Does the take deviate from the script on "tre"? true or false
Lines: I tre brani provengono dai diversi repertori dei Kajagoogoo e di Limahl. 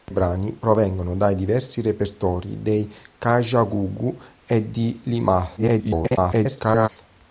true